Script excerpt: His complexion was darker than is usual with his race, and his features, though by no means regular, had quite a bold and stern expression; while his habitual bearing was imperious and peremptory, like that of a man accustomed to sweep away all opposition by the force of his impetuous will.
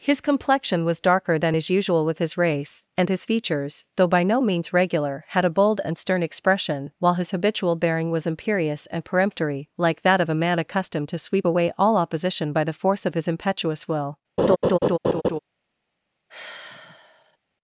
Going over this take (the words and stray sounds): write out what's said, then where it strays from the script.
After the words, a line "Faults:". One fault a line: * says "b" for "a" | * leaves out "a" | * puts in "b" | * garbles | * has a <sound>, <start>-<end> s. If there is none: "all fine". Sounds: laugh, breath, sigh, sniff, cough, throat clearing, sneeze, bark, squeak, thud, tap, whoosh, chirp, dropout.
His complexion was darker than is usual with his race, and his features, though by no means regular, had a bold and stern expression; while his habitual bearing was imperious and peremptory, like that of a man accustomed to sweep away all opposition by the force of his impetuous will.
Faults:
* leaves out "quite"
* has a laugh, 14.4-15.4 s
* has a sigh, 16.3-17.4 s